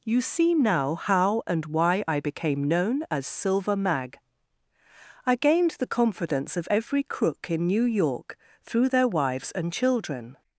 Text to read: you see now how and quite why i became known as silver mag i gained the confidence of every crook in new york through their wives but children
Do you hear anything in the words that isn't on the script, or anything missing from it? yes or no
yes